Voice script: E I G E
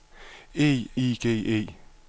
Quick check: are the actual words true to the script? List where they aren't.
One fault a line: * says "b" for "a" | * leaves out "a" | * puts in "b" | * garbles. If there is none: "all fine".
all fine